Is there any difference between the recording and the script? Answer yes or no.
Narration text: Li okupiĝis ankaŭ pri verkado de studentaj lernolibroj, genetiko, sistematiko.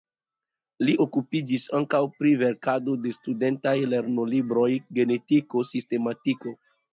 no